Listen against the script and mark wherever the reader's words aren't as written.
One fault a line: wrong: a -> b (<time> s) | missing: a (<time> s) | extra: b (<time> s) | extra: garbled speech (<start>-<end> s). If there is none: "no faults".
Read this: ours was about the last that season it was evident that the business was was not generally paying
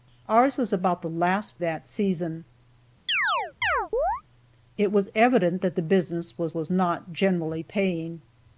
no faults